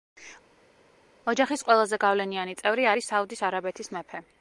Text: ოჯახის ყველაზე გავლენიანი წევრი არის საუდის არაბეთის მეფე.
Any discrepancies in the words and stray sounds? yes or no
no